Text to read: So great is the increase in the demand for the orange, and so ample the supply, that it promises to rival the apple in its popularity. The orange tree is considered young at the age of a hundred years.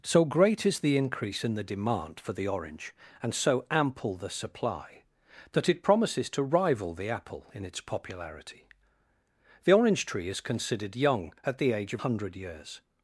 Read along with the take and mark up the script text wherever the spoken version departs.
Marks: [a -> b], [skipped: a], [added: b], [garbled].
So great is the increase in the demand for the orange, and so ample the supply, that it promises to rival the apple in its popularity. The orange tree is considered young at the age of [skipped: a] hundred years.